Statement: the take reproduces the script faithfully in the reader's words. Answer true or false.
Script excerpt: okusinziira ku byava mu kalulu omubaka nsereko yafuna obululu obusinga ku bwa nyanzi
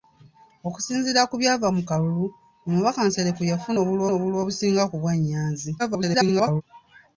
false